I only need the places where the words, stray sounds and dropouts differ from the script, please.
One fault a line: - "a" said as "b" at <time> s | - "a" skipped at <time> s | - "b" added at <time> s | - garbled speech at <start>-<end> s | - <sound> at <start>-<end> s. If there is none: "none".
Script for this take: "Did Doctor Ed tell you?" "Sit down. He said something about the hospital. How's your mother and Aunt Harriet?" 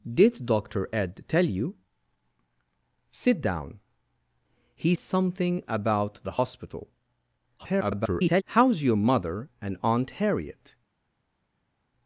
- "said" skipped at 5.0 s
- garbled speech at 7.6-8.4 s